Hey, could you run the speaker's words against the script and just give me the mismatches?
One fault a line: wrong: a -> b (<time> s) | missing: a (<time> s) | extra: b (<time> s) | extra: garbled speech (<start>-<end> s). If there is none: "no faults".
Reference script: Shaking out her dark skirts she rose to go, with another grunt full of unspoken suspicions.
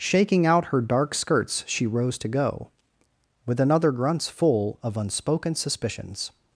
wrong: grunt -> grunts (3.9 s)